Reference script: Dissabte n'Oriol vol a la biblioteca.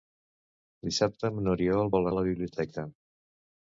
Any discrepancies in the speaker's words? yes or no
no